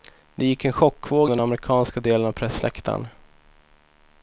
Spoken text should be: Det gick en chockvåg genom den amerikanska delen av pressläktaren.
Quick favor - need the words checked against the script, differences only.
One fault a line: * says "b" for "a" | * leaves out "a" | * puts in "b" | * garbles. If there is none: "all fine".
* leaves out "genom"